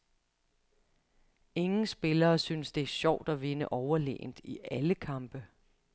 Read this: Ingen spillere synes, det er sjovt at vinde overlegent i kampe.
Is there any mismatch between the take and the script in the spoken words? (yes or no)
yes